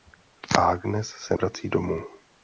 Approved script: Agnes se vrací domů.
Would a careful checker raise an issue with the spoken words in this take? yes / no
no